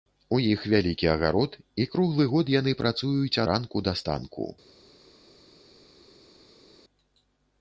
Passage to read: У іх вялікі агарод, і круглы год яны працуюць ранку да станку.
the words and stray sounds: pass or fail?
pass